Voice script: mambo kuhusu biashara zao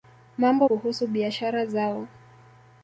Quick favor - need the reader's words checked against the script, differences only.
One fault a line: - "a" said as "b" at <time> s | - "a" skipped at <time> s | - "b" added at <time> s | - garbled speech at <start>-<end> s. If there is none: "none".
none